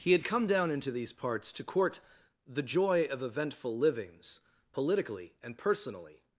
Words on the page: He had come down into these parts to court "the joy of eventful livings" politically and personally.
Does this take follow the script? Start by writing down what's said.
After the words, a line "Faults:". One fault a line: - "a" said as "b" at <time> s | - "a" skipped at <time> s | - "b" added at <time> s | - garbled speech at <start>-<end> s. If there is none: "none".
He had come down into these parts to court "the joy of eventful livings" politically and personally.
Faults:
none